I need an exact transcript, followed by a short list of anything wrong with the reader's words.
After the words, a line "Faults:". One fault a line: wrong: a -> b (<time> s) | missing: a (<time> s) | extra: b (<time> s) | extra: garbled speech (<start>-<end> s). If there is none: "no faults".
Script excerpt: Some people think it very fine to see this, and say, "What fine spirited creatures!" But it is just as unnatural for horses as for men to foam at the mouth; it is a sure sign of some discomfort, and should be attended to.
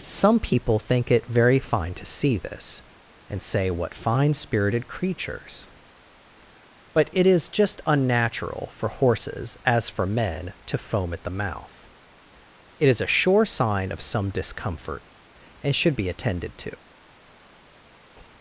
Some people think it very fine to see this, and say, "What fine spirited creatures!" But it is just unnatural for horses as for men to foam at the mouth; it is a sure sign of some discomfort, and should be attended to.
Faults:
missing: as (7.8 s)